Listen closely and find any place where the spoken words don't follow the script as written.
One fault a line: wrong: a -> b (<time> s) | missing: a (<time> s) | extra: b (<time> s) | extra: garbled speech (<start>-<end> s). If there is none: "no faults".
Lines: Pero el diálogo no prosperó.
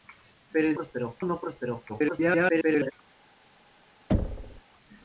wrong: diálogo -> prosperó (0.7 s)
extra: garbled speech (1.9-2.9 s)